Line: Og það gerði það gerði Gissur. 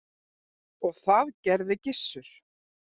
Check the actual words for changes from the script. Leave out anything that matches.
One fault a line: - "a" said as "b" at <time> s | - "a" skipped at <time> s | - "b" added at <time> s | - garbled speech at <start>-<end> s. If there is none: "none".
- "það gerði" skipped at 1.8 s